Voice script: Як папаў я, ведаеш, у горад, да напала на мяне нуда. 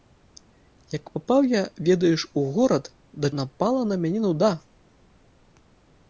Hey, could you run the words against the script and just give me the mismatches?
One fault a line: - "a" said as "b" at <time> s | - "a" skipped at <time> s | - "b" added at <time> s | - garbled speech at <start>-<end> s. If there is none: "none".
none